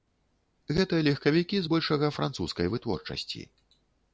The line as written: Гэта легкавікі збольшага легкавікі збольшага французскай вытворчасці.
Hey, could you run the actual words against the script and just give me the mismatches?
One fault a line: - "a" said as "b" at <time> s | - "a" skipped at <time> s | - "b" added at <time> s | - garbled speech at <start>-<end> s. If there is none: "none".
- "легкавікі збольшага" skipped at 2.1 s